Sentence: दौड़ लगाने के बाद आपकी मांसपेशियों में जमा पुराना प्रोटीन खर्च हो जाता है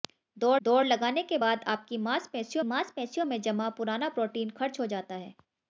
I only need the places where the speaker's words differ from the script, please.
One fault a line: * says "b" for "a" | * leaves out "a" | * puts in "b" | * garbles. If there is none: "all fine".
* puts in "दौड़"
* puts in "मांसपेशियों"